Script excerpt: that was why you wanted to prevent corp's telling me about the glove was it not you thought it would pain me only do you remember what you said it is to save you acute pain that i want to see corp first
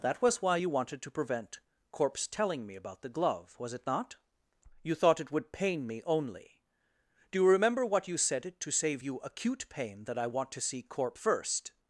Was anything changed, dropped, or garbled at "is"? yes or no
yes